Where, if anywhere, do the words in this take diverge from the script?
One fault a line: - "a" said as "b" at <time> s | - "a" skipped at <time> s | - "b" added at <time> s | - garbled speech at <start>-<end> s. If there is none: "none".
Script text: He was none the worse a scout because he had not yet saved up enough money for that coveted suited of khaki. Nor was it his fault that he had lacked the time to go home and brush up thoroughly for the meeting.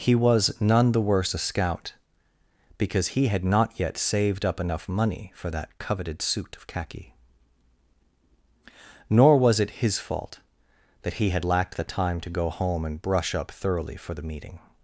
- "suited" said as "suit" at 6.2 s